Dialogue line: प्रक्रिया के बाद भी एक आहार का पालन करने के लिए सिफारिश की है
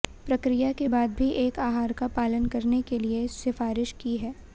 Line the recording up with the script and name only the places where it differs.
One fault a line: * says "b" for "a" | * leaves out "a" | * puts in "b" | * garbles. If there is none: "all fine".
all fine